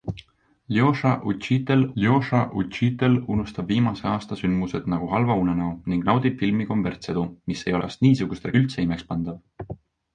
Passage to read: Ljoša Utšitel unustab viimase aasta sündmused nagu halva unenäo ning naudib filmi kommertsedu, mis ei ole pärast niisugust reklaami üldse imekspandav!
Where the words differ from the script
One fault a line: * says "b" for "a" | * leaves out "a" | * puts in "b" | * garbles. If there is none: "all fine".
* puts in "ljoša Utšitel"
* leaves out "ole"
* leaves out "reklaami"